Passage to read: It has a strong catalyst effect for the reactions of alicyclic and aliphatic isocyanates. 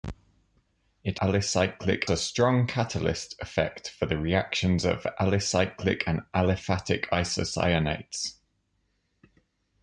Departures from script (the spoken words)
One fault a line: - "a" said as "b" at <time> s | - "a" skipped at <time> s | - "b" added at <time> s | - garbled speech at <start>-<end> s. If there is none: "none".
- "has" said as "alicyclic" at 1.2 s